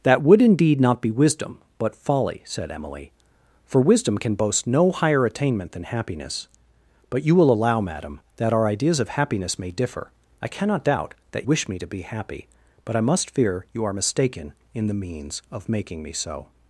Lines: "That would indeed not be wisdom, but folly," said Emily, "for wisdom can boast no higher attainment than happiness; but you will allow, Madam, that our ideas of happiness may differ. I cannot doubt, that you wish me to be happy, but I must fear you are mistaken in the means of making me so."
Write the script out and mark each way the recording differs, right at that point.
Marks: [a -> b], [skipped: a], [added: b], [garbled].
"That would indeed not be wisdom, but folly," said Emily, "for wisdom can boast no higher attainment than happiness; but you will allow, Madam, that our ideas of happiness may differ. I cannot doubt, that [skipped: you] wish me to be happy, but I must fear you are mistaken in the means of making me so."